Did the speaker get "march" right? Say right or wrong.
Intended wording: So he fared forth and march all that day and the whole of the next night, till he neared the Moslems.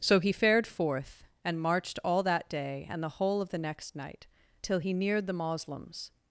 wrong